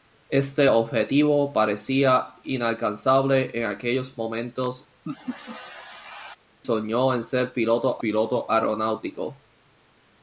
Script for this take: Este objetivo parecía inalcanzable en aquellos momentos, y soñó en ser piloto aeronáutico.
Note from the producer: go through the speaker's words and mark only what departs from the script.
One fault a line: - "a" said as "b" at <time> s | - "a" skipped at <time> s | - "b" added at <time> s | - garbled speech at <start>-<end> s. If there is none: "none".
- "y" skipped at 4.9 s
- "piloto" added at 8.0 s